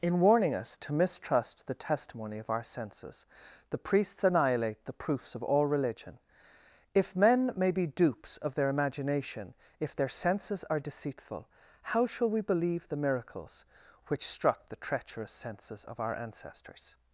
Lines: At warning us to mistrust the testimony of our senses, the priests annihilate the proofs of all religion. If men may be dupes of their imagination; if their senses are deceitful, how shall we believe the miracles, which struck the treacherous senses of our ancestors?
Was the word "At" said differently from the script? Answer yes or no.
yes